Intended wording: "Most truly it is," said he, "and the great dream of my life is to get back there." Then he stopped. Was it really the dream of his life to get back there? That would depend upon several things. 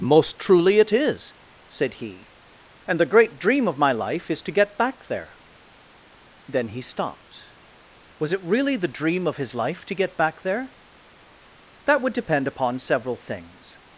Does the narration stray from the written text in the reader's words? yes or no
no